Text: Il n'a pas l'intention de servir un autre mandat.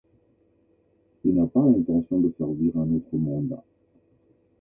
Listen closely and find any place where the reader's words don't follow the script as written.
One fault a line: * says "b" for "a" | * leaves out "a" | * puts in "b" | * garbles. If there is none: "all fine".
all fine